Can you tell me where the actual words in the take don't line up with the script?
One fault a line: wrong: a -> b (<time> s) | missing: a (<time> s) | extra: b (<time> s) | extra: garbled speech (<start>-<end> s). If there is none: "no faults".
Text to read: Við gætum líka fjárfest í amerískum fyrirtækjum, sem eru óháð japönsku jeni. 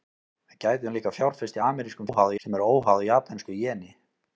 wrong: fyrirtækjum -> óháð (2.1 s)